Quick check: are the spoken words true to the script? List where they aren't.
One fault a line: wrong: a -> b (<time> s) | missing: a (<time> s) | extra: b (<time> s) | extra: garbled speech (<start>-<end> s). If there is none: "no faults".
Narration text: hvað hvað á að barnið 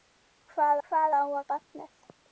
no faults